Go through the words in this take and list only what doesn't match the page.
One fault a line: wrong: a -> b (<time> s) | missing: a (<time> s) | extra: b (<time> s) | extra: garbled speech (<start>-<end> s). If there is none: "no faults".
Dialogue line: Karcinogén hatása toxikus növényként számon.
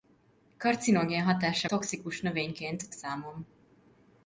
no faults